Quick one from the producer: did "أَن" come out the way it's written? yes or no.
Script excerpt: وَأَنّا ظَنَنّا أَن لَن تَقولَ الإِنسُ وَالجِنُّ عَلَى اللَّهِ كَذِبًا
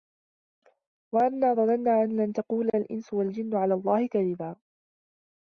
yes